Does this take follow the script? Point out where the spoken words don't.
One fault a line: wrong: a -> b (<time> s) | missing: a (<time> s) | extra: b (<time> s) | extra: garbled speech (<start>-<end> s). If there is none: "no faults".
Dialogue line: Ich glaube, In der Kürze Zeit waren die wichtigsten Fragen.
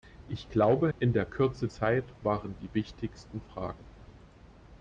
no faults